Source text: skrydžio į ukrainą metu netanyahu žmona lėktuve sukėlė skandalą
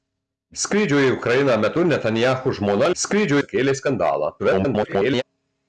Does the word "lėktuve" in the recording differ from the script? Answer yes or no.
yes